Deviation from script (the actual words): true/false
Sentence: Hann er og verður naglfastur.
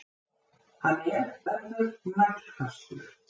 true